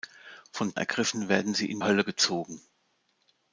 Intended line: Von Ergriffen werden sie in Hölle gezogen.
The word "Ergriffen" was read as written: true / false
true